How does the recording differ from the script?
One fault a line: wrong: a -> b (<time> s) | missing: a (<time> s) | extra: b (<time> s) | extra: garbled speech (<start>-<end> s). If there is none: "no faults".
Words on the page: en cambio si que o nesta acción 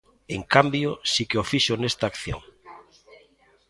extra: fixo (1.5 s)